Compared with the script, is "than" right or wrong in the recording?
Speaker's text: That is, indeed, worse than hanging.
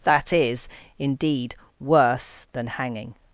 right